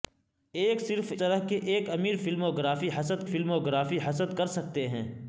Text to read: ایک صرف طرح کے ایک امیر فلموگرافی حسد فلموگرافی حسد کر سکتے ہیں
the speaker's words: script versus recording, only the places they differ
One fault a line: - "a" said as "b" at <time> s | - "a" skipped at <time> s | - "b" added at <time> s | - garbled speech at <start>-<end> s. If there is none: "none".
none